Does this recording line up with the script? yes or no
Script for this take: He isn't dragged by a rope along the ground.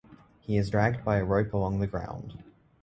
no